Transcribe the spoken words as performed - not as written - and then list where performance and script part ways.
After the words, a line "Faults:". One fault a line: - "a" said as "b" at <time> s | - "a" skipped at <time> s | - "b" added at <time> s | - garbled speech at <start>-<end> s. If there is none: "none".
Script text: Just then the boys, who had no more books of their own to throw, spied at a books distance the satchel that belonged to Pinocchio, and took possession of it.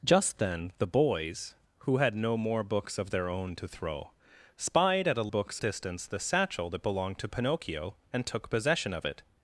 Just then the boys, who had no more books of their own to throw, spied at a books distance the satchel that belonged to Pinocchio, and took possession of it.
Faults:
none